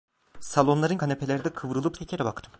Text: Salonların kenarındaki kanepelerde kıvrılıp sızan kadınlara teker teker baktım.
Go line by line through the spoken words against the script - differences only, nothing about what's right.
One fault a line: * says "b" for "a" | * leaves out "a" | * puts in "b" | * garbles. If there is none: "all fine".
* leaves out "kenarındaki"
* leaves out "sızan kadınlara teker"